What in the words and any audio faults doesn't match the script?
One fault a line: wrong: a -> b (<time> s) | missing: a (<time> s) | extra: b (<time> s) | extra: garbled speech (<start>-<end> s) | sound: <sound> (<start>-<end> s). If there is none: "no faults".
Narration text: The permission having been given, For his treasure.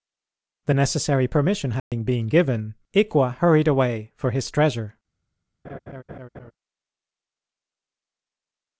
extra: necessary (0.7 s)
sound: dropout (1.8-1.9 s)
extra: Ikwa hurried away (2.9 s)
sound: laugh (5.6-6.5 s)